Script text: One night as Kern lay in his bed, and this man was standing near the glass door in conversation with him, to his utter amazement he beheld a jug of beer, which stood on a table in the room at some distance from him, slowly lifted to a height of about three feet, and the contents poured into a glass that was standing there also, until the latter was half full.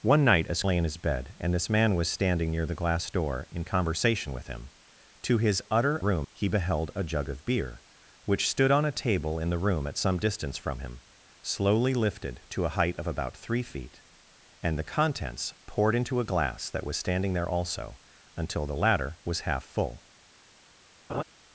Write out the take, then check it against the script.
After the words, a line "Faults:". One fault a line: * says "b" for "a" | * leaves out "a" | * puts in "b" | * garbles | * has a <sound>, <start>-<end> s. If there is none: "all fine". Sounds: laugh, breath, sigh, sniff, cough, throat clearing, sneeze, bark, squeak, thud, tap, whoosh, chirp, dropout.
One night as Lay in his bed, and this man was standing near the glass door in conversation with him, to his utter room he beheld a jug of beer, which stood on a table in the room at some distance from him, slowly lifted to a height of about three feet, and the contents poured into a glass that was standing there also, until the latter was half full.
Faults:
* leaves out "Kern"
* says "room" for "amazement"
* has a laugh, 21.1-21.2 s